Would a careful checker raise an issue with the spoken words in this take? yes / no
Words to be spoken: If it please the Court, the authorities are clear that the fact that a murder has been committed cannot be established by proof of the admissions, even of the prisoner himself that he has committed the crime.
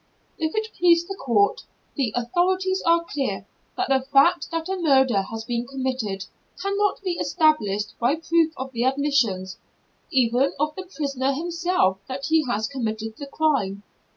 no